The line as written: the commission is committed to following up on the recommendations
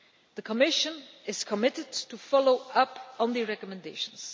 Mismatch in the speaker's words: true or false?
false